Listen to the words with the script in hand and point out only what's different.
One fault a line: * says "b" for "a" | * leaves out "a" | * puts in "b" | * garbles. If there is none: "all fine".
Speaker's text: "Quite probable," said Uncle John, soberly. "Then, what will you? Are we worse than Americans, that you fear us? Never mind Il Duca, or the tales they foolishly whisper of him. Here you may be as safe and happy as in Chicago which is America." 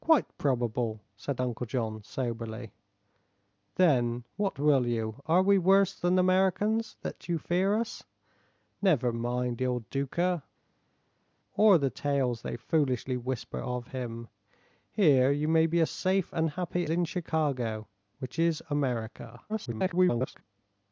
* leaves out "as"
* garbles